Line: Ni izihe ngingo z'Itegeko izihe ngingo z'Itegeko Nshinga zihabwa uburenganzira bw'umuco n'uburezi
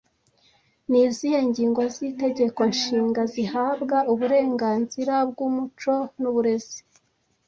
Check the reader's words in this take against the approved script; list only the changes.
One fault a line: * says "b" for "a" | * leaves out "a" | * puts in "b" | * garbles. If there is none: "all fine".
* leaves out "izihe ngingo z'Itegeko"